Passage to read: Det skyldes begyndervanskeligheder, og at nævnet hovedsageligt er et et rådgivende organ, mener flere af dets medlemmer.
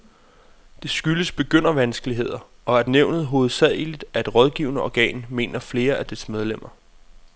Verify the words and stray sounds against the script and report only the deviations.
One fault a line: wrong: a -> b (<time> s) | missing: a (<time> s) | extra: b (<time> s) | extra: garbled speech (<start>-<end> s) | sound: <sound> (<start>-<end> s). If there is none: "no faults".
missing: et (4.3 s)